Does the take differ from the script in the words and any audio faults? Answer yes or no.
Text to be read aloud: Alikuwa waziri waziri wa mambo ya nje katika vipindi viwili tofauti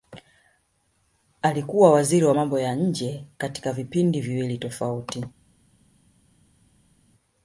yes